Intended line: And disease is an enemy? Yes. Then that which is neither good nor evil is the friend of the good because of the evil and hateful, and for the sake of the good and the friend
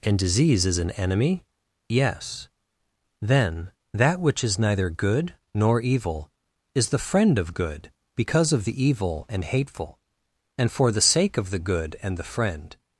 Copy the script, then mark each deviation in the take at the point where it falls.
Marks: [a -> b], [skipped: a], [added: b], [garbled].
And disease is an enemy? Yes. Then that which is neither good nor evil is the friend of [skipped: the] good because of the evil and hateful, and for the sake of the good and the friend